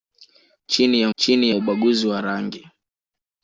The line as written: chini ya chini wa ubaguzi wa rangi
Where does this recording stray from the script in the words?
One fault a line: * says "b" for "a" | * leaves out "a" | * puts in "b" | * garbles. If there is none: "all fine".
all fine